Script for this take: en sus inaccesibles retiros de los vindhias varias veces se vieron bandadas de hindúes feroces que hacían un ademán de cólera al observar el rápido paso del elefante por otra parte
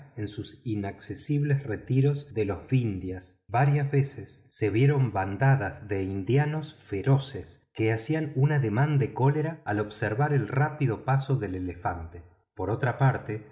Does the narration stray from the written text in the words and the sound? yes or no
no